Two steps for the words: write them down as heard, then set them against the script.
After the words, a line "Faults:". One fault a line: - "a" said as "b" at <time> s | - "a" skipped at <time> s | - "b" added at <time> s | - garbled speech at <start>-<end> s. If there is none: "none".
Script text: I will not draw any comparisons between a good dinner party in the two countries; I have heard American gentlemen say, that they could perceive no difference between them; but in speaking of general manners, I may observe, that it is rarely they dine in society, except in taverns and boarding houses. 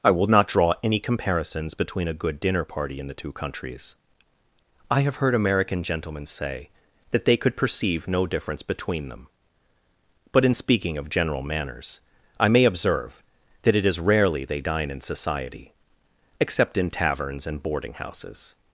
I will not draw any comparisons between a good dinner party in the two countries; I have heard American gentlemen say, that they could perceive no difference between them; but in speaking of general manners, I may observe, that it is rarely they dine in society, except in taverns and boarding houses.
Faults:
none